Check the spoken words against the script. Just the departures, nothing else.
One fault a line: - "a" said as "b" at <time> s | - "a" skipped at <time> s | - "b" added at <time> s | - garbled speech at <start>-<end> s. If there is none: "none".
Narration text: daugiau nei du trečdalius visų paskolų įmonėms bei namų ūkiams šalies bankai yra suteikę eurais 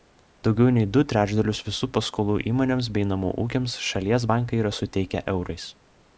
none